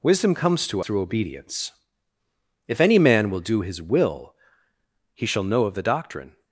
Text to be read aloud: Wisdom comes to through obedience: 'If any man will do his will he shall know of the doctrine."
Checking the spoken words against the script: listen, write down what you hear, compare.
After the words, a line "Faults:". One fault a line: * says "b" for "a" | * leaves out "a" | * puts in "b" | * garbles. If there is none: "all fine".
Wisdom comes to through obedience: 'If any man will do his will he shall know of the doctrine."
Faults:
all fine